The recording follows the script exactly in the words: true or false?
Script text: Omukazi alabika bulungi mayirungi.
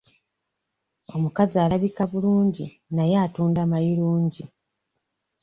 false